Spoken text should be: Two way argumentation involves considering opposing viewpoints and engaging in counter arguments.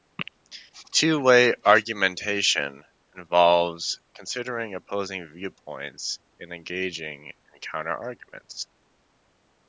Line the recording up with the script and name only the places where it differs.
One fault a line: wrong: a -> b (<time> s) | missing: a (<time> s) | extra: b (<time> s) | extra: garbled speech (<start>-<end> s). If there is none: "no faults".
no faults